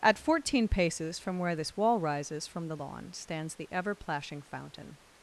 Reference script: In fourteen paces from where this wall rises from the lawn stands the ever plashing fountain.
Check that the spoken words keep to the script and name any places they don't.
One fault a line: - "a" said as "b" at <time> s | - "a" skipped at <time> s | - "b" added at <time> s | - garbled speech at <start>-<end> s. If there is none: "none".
- "In" said as "At" at 0.0 s